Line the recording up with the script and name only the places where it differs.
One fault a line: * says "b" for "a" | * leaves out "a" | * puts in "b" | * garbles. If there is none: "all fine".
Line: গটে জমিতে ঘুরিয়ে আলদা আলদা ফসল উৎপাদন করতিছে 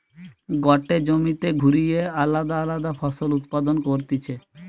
all fine